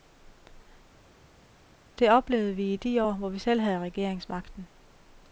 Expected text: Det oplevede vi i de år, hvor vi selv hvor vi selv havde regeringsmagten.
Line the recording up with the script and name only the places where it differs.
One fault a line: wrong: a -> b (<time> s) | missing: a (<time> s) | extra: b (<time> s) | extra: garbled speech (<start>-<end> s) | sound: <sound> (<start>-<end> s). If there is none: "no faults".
missing: hvor vi selv (3.6 s)